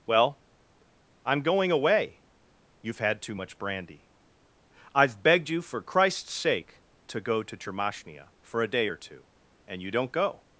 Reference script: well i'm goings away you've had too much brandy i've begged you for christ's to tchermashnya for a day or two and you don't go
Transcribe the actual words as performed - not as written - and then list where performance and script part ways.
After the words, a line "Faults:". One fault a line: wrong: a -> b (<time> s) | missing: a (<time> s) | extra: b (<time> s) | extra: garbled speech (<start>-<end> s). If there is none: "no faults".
well i'm going away you've had too much brandy i've begged you for christ's sake to go to tchermashnya for a day or two and you don't go
Faults:
wrong: goings -> going (1.4 s)
extra: sake to go (6.3 s)